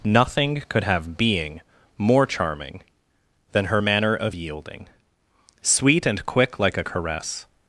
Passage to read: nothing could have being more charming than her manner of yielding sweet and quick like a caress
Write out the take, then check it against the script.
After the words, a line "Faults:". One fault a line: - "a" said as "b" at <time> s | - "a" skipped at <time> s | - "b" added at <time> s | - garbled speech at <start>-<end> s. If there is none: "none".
nothing could have being more charming than her manner of yielding sweet and quick like a caress
Faults:
none